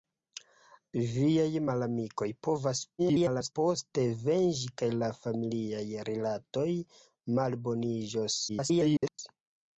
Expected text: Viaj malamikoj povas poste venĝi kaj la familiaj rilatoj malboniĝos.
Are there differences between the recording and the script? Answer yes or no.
yes